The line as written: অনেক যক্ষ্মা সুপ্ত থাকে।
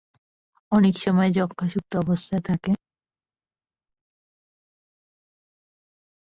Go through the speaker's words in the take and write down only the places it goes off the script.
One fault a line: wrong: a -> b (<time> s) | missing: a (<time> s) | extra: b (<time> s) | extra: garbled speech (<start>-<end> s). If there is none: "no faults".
extra: সময় (1.0 s)
extra: অবস্থায় (2.0 s)